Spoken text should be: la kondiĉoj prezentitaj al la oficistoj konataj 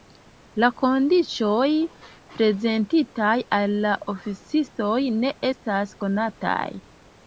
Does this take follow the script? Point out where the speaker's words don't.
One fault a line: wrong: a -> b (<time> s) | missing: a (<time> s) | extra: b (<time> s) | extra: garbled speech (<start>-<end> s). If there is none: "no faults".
extra: ne estas (5.2 s)